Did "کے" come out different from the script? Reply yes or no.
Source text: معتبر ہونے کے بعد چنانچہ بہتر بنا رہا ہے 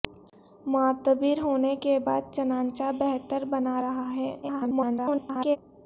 no